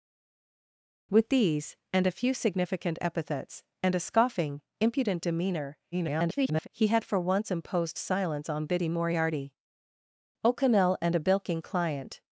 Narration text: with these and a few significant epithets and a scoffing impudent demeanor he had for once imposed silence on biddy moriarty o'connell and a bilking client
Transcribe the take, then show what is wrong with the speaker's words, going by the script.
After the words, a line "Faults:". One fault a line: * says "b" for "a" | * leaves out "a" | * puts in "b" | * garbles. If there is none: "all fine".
with these and a few significant epithets and a scoffing impudent demeanor [garbled] he had for once imposed silence on biddy moriarty o'connell and a bilking client
Faults:
* garbles